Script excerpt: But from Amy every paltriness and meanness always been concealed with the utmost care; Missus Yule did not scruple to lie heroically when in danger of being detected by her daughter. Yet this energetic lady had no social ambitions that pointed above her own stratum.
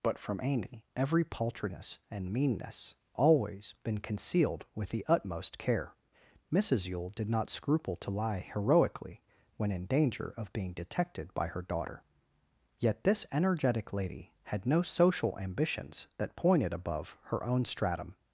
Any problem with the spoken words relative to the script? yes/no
no